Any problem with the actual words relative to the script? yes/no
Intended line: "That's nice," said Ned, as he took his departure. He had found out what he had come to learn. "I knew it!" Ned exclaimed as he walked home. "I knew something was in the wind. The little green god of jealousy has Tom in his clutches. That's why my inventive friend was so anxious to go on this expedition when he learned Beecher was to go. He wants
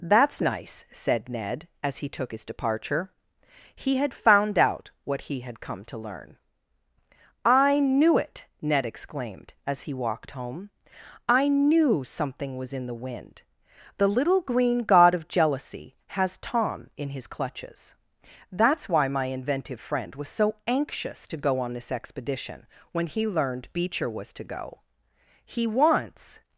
no